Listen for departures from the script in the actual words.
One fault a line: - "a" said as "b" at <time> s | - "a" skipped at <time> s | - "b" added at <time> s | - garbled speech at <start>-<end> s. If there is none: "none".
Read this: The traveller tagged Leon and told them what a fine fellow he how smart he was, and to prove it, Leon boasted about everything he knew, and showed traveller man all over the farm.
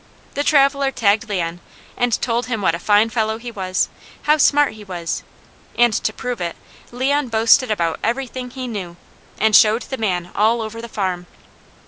- "them" said as "him" at 2.5 s
- "was" added at 3.5 s
- "traveller" said as "the" at 9.8 s